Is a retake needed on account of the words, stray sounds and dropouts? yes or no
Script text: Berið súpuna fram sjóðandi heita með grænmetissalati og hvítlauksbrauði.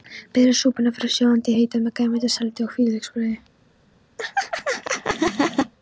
yes